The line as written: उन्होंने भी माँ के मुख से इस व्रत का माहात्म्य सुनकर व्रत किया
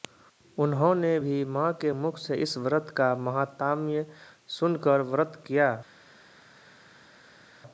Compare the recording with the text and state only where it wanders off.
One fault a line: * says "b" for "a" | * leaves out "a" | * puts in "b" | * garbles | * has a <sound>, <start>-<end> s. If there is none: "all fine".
all fine